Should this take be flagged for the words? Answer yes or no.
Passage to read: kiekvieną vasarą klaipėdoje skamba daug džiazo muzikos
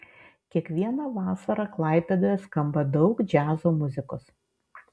no